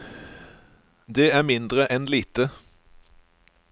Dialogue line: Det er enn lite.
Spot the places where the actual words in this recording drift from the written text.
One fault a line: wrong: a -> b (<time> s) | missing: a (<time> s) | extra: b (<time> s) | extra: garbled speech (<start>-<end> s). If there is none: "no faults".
extra: mindre (1.4 s)